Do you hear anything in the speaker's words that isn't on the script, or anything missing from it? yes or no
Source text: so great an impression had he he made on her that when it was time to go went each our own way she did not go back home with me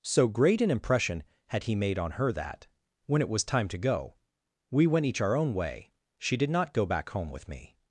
yes